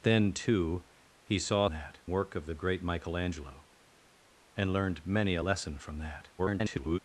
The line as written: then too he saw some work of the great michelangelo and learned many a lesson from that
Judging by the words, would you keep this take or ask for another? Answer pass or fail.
fail